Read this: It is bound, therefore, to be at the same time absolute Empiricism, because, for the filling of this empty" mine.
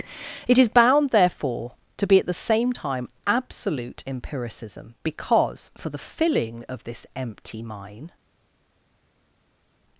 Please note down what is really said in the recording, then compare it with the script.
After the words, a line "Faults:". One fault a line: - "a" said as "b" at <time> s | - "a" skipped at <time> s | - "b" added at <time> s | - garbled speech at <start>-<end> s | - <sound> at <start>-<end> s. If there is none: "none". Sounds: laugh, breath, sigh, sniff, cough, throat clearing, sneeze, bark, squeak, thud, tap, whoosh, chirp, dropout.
It is bound, therefore, to be at the same time absolute Empiricism, because, for the filling of this empty" mine.
Faults:
none